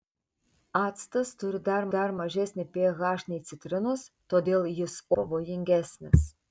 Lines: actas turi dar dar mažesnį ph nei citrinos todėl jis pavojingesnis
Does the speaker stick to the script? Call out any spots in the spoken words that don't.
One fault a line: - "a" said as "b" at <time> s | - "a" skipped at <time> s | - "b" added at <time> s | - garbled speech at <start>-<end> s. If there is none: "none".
none